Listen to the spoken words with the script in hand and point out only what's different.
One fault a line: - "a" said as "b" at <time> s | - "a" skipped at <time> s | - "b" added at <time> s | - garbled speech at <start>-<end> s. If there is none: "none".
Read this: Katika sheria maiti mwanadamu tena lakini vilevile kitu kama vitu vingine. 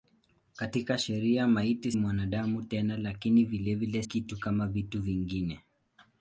none